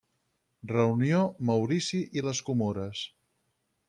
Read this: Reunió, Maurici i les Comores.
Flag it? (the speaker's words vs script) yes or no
no